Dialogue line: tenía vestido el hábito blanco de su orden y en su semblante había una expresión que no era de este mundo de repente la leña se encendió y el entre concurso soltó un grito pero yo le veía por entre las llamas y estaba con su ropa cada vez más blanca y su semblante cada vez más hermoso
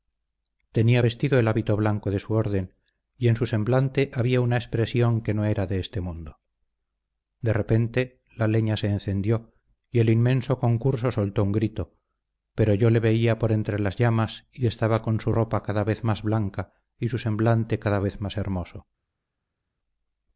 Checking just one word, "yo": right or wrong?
right